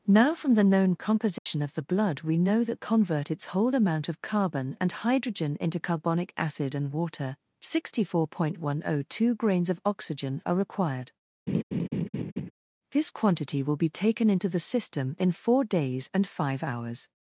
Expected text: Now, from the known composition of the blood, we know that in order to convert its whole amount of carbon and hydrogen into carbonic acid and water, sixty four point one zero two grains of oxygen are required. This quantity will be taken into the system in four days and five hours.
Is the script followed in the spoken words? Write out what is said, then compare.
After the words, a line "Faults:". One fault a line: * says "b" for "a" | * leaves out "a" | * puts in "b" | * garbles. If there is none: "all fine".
Now, from the known composition of the blood, we know that convert its whole amount of carbon and hydrogen into carbonic acid and water, sixty four point one zero two grains of oxygen are required. This quantity will be taken into the system in four days and five hours.
Faults:
* leaves out "in order to"